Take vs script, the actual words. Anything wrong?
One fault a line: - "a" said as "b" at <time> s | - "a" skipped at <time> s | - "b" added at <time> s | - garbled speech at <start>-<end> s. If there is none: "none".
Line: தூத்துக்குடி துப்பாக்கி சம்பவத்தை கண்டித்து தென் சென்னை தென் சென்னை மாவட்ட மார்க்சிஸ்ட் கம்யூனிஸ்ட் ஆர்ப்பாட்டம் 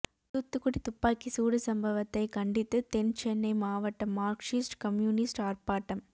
- "சூடு" added at 1.3 s
- "தென் சென்னை" skipped at 3.5 s